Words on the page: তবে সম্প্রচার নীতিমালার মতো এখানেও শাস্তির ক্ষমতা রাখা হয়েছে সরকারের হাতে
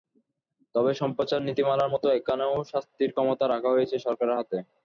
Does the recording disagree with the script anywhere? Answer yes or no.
no